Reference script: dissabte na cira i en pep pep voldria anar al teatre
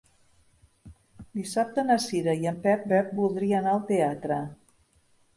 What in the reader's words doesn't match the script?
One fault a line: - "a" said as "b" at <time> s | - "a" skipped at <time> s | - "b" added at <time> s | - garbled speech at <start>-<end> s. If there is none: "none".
none